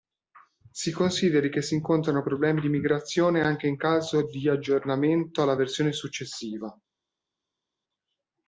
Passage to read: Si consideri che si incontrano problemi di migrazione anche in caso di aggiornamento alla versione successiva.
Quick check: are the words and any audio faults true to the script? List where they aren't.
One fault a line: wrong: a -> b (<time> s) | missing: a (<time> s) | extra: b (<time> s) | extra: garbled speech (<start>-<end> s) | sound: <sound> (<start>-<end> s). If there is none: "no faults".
no faults